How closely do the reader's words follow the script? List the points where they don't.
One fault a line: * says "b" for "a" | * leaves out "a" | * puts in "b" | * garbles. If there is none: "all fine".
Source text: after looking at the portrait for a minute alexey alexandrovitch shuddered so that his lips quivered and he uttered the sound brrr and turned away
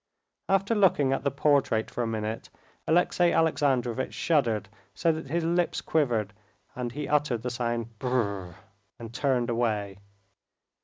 all fine